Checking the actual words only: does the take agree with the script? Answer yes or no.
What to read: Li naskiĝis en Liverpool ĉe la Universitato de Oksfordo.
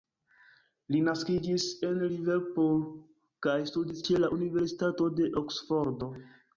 no